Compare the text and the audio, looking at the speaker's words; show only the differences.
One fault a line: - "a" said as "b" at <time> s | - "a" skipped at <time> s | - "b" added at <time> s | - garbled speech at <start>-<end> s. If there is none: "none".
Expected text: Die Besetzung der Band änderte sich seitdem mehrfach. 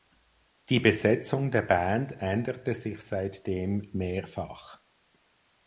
none